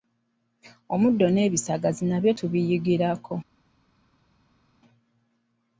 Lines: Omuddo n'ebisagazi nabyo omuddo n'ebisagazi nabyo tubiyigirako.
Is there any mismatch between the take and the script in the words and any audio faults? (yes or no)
yes